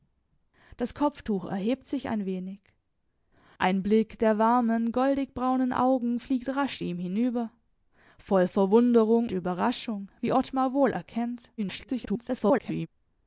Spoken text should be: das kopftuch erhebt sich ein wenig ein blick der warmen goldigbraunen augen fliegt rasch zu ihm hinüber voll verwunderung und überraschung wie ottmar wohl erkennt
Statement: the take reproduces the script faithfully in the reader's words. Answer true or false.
false